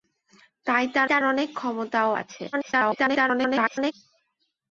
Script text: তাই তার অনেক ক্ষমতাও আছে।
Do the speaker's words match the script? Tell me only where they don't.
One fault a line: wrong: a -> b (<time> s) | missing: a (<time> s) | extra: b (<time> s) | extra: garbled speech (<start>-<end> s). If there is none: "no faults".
extra: তার (1.1 s)
extra: garbled speech (2.5-3.9 s)